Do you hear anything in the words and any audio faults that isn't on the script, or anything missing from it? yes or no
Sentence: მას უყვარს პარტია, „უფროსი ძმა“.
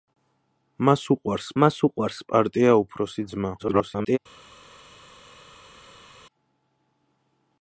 yes